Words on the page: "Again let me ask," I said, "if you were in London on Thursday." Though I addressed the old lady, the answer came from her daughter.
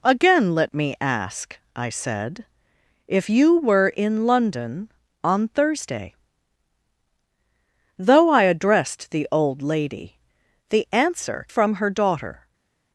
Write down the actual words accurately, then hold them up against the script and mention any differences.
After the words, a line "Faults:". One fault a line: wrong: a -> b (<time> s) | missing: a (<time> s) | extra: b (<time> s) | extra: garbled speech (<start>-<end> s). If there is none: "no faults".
"Again let me ask," I said, "if you were in London on Thursday." Though I addressed the old lady, the answer from her daughter.
Faults:
missing: came (11.5 s)